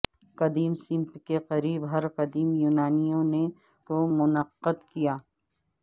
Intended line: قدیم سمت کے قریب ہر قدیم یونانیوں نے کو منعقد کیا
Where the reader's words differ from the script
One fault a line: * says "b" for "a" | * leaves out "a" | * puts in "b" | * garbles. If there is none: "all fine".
all fine